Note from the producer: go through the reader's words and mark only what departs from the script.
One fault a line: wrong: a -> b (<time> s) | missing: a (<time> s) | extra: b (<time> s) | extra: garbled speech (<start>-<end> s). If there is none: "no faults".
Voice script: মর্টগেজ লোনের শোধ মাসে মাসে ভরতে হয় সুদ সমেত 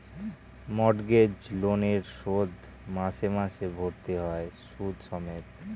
no faults